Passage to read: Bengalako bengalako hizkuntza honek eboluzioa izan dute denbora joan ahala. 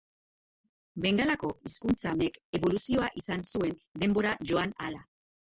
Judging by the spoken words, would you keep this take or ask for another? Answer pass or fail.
fail